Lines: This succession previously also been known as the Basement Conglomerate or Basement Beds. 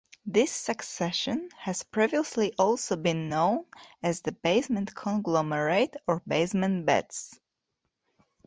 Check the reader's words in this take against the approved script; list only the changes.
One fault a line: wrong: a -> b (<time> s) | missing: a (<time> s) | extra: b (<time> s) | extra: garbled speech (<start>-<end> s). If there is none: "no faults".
extra: has (1.6 s)